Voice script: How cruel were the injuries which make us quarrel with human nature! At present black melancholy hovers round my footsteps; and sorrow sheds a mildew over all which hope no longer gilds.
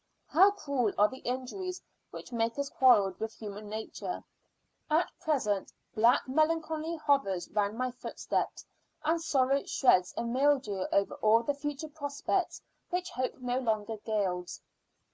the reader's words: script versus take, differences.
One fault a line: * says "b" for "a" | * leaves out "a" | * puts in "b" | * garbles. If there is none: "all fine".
* says "are" for "were"
* puts in "the future prospects"